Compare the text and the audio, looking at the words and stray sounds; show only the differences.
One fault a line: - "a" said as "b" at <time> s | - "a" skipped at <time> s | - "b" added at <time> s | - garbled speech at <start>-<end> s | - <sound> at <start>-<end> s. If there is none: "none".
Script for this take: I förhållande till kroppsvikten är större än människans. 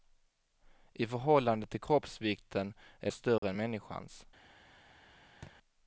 - dropout at 3.4-3.4 s
- thud at 5.4-5.6 s